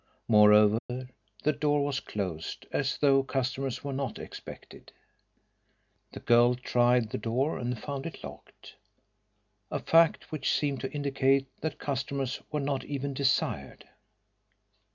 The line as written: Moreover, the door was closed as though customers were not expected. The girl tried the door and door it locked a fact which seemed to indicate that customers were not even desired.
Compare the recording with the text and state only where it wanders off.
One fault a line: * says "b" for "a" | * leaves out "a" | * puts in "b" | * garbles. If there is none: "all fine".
* says "found" for "door"